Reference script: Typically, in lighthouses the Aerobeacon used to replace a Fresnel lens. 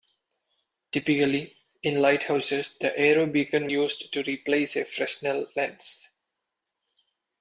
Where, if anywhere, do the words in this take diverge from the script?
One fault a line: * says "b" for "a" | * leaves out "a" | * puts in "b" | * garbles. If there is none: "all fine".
all fine